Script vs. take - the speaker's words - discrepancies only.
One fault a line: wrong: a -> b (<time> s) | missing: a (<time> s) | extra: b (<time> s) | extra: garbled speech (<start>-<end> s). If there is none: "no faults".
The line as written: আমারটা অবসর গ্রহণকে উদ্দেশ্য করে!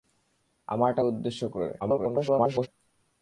missing: অবসর গ্রহণকে (1.0 s)
extra: garbled speech (1.8-2.7 s)